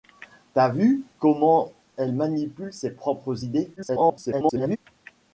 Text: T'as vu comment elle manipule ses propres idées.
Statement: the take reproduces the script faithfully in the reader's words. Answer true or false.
false